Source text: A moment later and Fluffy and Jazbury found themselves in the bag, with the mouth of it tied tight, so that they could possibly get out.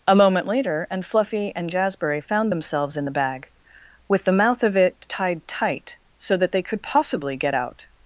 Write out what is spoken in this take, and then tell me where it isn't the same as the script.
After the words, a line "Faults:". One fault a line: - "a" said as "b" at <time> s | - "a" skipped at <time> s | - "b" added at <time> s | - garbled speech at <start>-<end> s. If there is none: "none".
A moment later and Fluffy and Jazbury found themselves in the bag, with the mouth of it tied tight, so that they could possibly get out.
Faults:
none